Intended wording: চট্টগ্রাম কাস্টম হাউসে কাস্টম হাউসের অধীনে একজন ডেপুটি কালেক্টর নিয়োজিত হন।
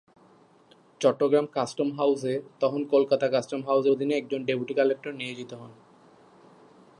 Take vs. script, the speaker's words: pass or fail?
fail